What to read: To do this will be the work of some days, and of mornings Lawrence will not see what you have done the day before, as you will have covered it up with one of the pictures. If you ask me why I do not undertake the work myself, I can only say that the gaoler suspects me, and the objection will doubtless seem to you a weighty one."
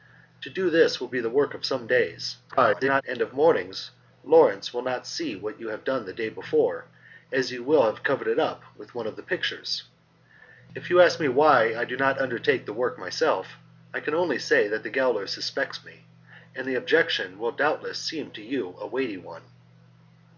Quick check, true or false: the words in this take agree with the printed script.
false